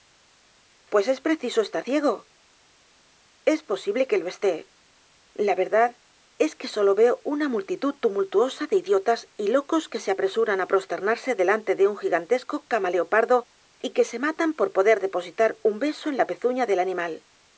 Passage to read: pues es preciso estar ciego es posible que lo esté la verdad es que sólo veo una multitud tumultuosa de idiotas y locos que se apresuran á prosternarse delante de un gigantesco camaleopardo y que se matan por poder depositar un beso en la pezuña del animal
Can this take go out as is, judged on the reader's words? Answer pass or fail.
pass